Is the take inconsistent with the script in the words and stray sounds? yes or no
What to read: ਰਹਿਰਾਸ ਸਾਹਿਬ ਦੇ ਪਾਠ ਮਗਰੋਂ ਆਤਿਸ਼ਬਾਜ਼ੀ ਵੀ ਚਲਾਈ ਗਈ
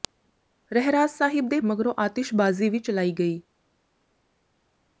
yes